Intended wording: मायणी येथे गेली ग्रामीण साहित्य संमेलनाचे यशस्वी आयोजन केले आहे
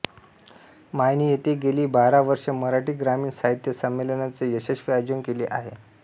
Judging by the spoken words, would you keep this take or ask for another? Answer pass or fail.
fail